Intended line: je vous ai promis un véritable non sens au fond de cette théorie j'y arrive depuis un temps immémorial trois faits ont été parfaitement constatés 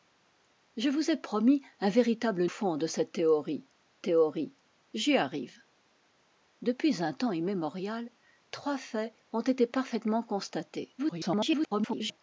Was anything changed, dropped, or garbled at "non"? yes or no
yes